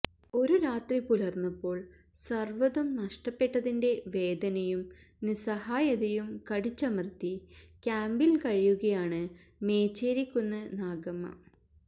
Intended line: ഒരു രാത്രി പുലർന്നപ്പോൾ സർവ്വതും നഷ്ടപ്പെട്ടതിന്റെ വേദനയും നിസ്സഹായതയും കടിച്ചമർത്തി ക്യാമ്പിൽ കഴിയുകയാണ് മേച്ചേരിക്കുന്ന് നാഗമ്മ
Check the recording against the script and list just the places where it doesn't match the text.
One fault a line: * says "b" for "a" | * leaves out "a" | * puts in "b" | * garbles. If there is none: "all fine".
all fine